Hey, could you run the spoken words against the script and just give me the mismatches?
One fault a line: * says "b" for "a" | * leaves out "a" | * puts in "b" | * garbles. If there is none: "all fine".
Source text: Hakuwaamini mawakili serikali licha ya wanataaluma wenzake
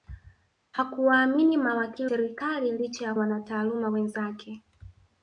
all fine